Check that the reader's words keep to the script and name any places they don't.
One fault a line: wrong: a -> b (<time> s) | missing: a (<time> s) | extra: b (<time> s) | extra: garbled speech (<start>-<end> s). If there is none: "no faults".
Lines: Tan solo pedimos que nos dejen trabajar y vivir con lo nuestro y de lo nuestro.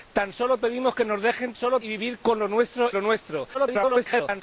wrong: trabajar -> solo (1.6 s)
missing: y de (2.9 s)
extra: garbled speech (3.5-4.4 s)